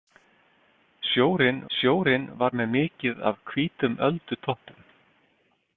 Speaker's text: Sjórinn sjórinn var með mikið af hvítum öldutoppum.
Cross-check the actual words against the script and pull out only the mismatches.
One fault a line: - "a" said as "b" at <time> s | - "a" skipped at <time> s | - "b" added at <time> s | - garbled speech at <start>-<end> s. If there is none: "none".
none